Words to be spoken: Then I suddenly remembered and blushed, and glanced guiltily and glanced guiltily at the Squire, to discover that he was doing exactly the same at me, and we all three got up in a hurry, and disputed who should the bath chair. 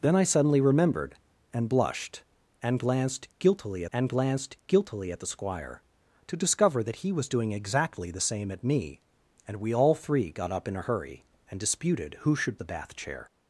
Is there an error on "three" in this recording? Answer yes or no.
no